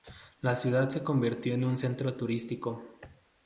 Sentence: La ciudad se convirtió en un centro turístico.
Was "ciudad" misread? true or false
false